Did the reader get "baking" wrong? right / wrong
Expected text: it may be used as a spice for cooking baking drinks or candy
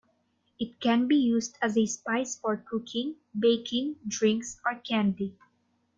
right